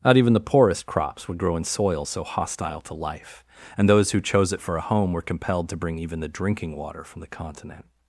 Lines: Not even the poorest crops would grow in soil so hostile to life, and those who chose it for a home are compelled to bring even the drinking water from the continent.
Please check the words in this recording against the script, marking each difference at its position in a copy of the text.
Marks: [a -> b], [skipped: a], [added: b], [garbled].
Not even the poorest crops would grow in soil so hostile to life, and those who chose it for a home [are -> were] compelled to bring even the drinking water from the continent.